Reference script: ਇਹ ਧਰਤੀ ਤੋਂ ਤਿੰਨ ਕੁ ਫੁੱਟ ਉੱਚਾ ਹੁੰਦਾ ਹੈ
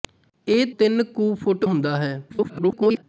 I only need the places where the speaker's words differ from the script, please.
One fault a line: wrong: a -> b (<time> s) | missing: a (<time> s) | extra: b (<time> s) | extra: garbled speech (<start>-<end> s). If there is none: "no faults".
missing: ਧਰਤੀ ਤੋਂ (0.7 s)
missing: ਉੱਚਾ (1.6 s)
extra: garbled speech (2.3-3.0 s)